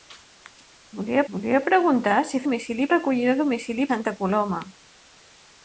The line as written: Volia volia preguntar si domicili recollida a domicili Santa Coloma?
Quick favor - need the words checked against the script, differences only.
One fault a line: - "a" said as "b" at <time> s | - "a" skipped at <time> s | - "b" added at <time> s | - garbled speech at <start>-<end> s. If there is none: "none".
none